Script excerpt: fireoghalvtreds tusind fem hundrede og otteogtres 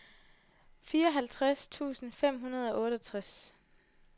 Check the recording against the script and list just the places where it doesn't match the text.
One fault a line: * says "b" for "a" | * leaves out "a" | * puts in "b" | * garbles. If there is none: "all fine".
all fine